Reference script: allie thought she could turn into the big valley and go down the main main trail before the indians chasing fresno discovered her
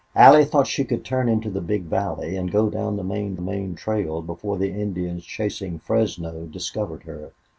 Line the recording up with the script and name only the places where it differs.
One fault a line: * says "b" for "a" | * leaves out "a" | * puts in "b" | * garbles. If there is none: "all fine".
all fine